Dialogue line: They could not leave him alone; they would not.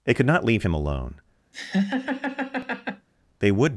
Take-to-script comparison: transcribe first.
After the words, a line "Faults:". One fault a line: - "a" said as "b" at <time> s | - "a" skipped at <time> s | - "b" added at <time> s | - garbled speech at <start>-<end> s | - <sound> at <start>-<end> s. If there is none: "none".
They could not leave him alone; they would.
Faults:
- laugh at 1.5-3.1 s
- "not" skipped at 3.7 s